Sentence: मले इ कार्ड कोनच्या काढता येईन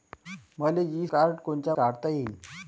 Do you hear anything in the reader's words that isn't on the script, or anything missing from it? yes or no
no